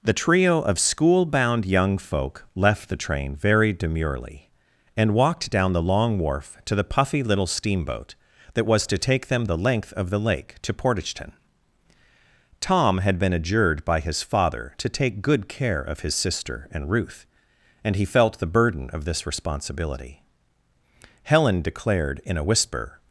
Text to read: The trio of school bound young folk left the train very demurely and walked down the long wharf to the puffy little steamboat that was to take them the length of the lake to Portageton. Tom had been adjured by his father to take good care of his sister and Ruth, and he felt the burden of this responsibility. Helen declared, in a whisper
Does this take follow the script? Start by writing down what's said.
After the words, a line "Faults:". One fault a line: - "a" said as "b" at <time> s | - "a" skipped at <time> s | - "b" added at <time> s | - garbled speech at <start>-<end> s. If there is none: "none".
The trio of school bound young folk left the train very demurely and walked down the long wharf to the puffy little steamboat that was to take them the length of the lake to Portageton. Tom had been adjured by his father to take good care of his sister and Ruth, and he felt the burden of this responsibility. Helen declared, in a whisper
Faults:
none